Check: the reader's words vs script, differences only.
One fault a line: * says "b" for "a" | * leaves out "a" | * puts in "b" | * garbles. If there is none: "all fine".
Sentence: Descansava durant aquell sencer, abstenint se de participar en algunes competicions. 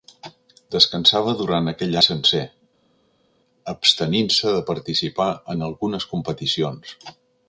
all fine